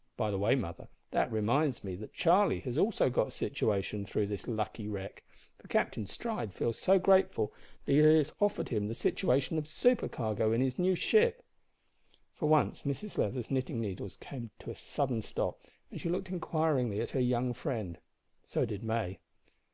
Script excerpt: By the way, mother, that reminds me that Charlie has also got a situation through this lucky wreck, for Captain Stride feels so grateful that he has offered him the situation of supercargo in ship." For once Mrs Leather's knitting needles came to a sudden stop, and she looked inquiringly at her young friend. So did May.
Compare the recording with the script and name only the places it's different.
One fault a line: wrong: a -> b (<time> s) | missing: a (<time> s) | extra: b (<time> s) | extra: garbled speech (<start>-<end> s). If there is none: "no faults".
extra: his new (10.6 s)